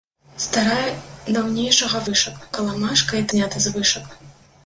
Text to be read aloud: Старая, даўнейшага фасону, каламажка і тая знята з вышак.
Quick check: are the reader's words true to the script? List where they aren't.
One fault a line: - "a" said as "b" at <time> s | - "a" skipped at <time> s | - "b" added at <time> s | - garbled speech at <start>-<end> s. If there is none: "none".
- "фасону" said as "вышак" at 2.1 s
- "тая" skipped at 3.3 s